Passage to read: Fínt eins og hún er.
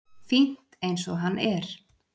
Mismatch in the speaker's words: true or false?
true